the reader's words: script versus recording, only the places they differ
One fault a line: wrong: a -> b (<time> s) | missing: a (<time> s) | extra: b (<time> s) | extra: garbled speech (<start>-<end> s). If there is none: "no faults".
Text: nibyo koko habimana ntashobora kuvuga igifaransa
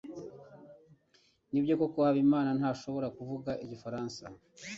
no faults